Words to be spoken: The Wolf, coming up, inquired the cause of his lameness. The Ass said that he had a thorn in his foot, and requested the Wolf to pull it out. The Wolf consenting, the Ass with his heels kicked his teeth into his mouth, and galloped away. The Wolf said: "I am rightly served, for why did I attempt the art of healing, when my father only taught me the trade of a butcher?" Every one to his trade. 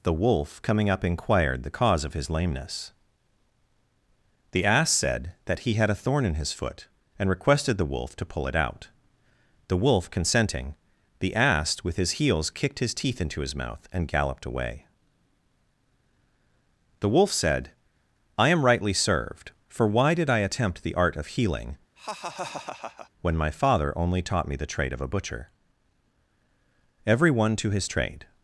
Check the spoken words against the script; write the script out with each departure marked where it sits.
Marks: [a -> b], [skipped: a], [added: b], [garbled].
The Wolf, coming up, inquired the cause of his lameness. The Ass said that he had a thorn in his foot, and requested the Wolf to pull it out. The Wolf consenting, the Ass with his heels kicked his teeth into his mouth, and galloped away. The Wolf said: "I am rightly served, for why did I attempt the art of healing, when my father only taught me the trade of a butcher?" Every one to his trade.